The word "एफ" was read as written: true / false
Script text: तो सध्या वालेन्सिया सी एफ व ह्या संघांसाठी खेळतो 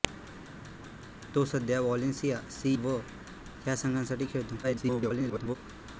false